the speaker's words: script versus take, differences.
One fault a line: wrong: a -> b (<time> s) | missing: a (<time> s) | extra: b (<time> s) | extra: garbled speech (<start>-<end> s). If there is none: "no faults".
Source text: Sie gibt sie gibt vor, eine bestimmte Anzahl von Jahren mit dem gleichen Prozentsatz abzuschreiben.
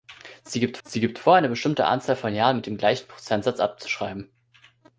no faults